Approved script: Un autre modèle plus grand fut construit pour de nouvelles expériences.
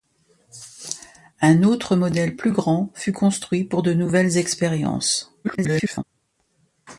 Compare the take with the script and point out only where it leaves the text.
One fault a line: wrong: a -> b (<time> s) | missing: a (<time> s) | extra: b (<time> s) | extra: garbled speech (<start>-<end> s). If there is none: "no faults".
extra: garbled speech (5.4-6.0 s)